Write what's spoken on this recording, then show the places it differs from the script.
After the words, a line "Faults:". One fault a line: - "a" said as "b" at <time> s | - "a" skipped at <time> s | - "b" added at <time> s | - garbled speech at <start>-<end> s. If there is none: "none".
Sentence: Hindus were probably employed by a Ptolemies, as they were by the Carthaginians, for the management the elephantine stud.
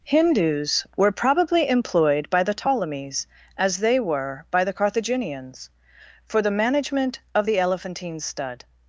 Hindus were probably employed by the Ptolemies, as they were by the Carthaginians, for the management of the elephantine stud.
Faults:
- "a" said as "the" at 2.4 s
- "of" added at 7.3 s